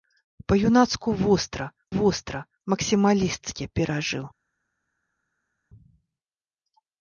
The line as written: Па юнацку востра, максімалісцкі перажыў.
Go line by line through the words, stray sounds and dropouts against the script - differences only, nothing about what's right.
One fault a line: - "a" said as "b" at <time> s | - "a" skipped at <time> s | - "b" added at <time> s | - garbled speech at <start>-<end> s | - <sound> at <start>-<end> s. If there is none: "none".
- "востра" added at 1.9 s